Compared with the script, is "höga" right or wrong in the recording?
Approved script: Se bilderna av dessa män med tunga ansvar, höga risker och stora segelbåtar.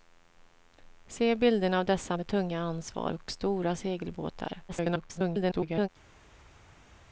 wrong